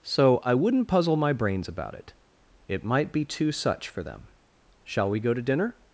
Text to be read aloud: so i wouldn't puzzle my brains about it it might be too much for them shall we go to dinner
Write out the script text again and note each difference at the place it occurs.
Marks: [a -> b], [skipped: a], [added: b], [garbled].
so i wouldn't puzzle my brains about it it might be too [much -> such] for them shall we go to dinner